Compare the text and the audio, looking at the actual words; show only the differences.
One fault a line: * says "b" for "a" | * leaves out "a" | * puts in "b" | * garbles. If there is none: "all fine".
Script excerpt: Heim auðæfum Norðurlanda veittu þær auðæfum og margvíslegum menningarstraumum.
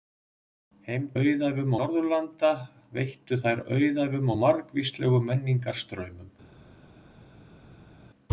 all fine